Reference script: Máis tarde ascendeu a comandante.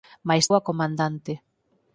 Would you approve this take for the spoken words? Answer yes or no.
no